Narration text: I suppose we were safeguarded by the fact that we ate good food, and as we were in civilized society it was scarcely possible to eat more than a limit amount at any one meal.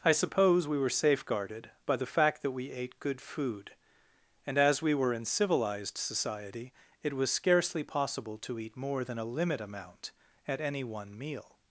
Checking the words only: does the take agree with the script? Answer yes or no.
yes